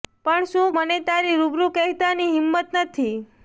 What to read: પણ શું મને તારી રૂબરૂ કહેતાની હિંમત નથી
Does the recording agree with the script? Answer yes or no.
yes